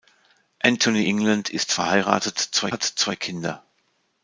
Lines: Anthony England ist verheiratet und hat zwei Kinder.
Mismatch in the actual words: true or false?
true